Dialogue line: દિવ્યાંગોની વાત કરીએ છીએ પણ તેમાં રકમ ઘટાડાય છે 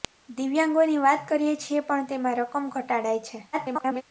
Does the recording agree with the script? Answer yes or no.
no